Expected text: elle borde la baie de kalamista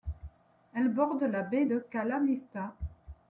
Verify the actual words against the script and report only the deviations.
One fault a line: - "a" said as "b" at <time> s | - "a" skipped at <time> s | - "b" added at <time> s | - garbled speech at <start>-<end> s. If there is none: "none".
none